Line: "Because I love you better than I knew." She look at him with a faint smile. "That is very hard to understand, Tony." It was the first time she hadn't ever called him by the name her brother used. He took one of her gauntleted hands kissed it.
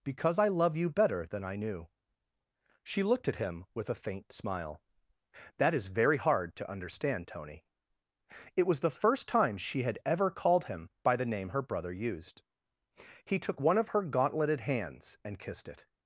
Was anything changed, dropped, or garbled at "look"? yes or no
yes